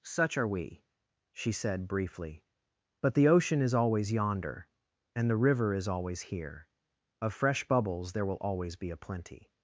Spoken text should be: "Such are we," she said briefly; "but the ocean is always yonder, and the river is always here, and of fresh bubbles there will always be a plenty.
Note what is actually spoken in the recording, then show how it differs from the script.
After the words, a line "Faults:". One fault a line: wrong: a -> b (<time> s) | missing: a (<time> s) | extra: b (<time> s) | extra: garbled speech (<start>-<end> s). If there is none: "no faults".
"Such are we," she said briefly; "but the ocean is always yonder, and the river is always here, of fresh bubbles there will always be a plenty.
Faults:
missing: and (6.7 s)